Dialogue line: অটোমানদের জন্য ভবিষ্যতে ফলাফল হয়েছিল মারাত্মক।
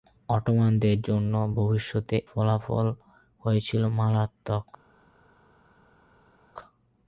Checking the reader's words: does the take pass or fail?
pass